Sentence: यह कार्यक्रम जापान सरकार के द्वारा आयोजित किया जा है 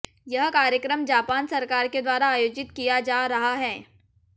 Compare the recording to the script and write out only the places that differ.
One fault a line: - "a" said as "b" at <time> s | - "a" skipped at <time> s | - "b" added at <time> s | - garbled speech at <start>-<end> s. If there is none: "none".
- "रहा" added at 3.3 s